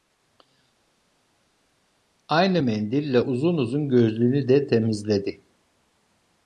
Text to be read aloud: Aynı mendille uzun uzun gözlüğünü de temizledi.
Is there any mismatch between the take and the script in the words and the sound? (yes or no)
no